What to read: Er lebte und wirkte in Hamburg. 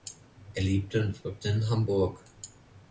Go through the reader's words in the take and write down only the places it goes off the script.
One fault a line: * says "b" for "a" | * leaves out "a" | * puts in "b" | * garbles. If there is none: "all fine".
all fine